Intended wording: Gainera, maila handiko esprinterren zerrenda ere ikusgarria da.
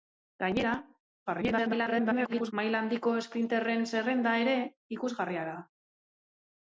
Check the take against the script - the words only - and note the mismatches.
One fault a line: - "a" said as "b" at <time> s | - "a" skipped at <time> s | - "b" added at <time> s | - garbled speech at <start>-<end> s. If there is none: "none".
- garbled speech at 1.3-2.5 s